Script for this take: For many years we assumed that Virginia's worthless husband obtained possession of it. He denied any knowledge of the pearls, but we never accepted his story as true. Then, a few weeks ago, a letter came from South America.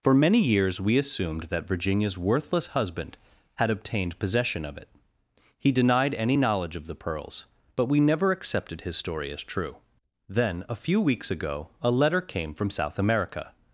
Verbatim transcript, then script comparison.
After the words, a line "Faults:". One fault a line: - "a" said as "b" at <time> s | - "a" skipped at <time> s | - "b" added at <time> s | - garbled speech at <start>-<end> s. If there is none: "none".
For many years we assumed that Virginia's worthless husband had obtained possession of it. He denied any knowledge of the pearls, but we never accepted his story as true. Then, a few weeks ago, a letter came from South America.
Faults:
- "had" added at 3.5 s